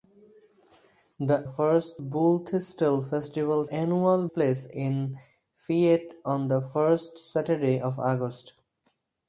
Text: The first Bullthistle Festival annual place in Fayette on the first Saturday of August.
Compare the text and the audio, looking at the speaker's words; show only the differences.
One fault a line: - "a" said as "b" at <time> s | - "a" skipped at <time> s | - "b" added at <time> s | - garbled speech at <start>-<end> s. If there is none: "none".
none